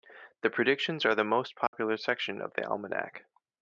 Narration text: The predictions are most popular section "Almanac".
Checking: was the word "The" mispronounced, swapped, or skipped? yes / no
no